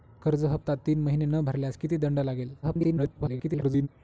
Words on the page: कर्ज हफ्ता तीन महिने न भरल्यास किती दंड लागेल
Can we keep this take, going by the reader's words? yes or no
no